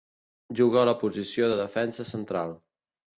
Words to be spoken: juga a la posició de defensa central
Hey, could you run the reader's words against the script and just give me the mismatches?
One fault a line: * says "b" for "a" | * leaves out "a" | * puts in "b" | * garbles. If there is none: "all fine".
all fine